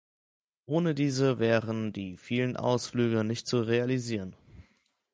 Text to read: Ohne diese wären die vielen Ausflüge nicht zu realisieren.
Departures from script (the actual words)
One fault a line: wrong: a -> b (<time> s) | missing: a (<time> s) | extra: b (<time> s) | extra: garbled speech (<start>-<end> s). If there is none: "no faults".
no faults